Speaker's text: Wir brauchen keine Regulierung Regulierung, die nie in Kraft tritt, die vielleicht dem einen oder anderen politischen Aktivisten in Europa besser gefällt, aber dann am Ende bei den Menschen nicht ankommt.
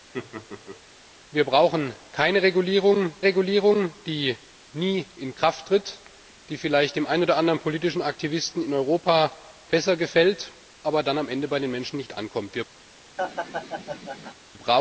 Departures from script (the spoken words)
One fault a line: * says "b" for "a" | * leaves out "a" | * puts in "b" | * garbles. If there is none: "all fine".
all fine